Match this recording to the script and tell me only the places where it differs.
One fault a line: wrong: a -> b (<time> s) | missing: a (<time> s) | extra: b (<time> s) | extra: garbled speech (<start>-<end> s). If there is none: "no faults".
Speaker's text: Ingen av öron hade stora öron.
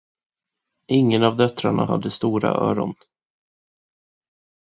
wrong: öron -> döttrarna (1.4 s)